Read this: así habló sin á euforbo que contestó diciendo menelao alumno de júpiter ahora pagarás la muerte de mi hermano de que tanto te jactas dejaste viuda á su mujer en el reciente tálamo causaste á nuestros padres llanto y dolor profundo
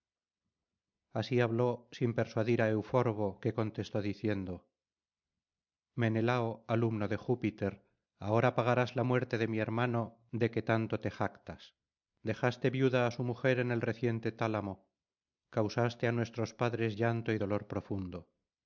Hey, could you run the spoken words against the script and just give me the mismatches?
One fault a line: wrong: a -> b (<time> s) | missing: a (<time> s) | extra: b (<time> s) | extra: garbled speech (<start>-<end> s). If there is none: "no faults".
extra: persuadir (2.2 s)